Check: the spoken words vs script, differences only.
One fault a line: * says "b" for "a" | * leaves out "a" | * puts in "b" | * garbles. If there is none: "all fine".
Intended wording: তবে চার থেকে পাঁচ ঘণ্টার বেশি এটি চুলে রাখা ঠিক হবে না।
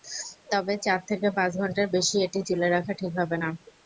all fine